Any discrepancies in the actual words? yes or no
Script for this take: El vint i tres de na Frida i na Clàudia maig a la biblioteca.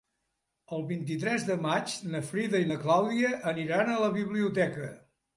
yes